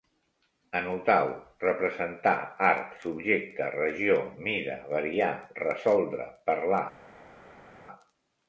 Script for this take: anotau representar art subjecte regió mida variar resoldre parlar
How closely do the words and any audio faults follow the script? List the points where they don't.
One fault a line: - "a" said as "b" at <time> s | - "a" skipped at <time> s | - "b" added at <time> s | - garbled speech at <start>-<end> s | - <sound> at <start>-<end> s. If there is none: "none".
none